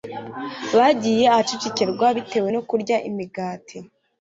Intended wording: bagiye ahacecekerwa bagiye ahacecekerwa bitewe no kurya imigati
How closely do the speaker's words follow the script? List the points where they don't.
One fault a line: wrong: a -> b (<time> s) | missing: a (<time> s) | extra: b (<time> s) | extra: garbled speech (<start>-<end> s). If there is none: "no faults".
missing: bagiye ahacecekerwa (2.1 s)